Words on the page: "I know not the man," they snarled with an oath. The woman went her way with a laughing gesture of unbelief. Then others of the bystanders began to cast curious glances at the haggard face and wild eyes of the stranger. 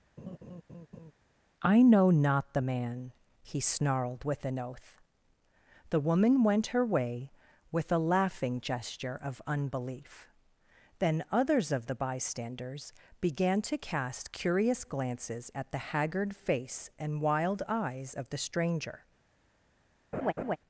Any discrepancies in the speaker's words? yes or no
yes